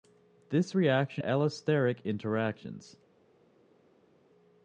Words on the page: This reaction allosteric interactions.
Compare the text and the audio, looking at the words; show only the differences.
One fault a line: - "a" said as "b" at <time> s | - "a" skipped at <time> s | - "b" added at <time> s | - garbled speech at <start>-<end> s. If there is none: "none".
none